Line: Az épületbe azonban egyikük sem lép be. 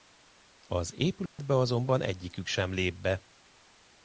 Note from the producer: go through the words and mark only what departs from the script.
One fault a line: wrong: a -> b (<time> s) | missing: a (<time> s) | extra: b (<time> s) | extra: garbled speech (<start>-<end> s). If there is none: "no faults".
no faults